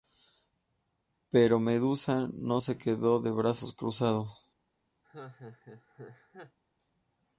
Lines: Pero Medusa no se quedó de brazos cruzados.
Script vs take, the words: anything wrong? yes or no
no